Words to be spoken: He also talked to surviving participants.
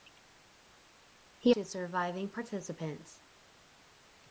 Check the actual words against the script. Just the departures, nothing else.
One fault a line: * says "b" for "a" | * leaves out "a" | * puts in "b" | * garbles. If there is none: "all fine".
* leaves out "also talked"